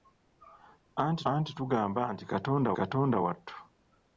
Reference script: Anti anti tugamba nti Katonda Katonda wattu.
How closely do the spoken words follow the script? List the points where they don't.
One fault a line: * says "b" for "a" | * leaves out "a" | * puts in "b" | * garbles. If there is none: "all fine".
all fine